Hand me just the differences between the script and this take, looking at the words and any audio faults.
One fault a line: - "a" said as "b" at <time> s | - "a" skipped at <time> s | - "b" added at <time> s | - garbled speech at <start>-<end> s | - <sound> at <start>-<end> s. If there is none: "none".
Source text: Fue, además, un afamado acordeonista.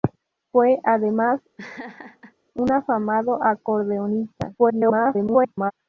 - laugh at 1.6-2.3 s
- garbled speech at 4.6-5.7 s